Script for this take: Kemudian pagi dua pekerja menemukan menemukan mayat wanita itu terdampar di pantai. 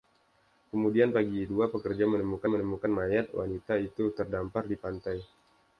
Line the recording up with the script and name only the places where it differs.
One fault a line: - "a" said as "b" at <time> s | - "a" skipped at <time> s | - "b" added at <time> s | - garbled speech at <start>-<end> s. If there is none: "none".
none